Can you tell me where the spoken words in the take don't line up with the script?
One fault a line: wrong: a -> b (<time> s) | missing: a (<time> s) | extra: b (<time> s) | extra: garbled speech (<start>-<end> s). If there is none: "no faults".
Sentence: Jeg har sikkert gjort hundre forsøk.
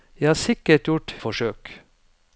missing: hundre (1.1 s)